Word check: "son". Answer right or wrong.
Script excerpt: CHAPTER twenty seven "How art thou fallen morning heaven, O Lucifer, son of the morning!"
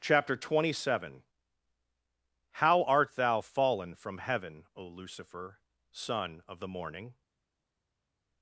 right